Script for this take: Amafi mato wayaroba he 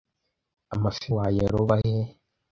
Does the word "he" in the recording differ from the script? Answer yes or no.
no